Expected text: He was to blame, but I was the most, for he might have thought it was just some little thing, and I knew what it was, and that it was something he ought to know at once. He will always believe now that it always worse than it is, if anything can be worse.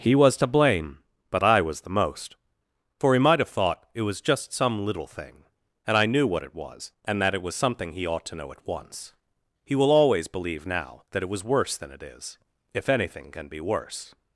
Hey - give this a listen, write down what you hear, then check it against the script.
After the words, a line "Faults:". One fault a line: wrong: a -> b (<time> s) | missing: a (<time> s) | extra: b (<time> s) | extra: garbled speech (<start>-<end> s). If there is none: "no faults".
He was to blame, but I was the most, for he might have thought it was just some little thing, and I knew what it was, and that it was something he ought to know at once. He will always believe now that it was worse than it is, if anything can be worse.
Faults:
wrong: always -> was (11.3 s)